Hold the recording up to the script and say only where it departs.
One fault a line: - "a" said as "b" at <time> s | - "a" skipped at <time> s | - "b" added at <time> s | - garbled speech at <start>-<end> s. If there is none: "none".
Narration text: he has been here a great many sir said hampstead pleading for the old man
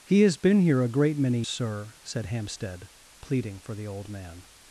none